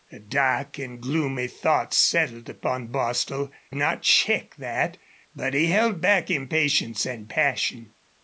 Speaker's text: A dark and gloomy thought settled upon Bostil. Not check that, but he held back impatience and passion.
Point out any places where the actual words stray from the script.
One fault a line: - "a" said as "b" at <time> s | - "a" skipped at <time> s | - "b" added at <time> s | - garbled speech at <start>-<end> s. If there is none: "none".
none